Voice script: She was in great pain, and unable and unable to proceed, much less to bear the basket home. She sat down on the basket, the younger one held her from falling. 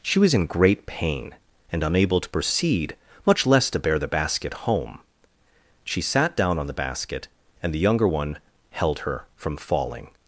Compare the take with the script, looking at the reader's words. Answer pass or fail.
fail